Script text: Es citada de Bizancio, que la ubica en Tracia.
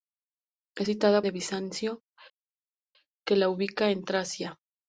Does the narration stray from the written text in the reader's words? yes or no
no